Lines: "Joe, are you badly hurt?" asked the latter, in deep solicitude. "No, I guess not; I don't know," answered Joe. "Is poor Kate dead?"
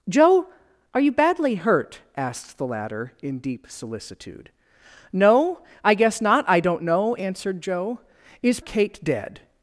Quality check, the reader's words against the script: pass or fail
fail